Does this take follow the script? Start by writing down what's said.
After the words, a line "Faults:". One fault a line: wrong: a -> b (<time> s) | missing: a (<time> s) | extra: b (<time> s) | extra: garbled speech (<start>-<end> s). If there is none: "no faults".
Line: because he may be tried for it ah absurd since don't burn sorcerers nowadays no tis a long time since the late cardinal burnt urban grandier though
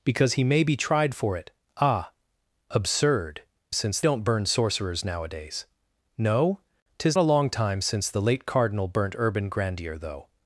because he may be tried for it ah absurd since don't burn sorcerers nowadays no tis a long time since the late cardinal burnt urban grandier though
Faults:
no faults